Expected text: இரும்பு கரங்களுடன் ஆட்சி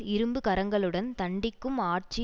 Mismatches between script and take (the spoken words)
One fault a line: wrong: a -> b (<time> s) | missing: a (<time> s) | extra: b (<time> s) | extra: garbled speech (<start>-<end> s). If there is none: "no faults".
extra: தண்டிக்கும் (1.2 s)